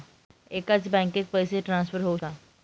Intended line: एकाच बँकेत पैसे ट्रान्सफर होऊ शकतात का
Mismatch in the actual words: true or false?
true